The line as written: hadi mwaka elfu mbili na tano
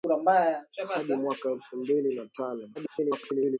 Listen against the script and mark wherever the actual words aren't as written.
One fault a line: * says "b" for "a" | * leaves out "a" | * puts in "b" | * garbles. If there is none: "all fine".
* garbles